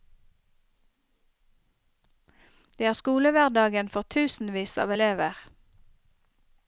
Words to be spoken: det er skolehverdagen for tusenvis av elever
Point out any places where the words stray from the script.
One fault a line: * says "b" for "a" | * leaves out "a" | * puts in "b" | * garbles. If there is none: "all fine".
all fine